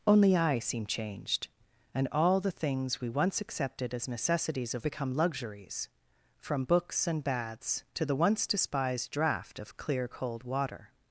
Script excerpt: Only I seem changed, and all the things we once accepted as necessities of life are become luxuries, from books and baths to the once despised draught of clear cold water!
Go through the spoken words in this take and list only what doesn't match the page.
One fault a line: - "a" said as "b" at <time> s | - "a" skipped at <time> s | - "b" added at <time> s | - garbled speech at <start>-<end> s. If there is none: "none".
- "life are" skipped at 4.9 s